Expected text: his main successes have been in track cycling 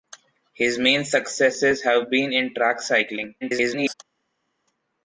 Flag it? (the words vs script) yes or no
yes